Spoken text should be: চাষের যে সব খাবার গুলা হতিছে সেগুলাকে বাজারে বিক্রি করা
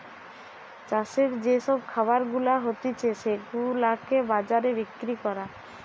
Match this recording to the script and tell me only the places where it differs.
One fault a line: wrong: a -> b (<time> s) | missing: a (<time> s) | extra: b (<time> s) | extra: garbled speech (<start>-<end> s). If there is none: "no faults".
no faults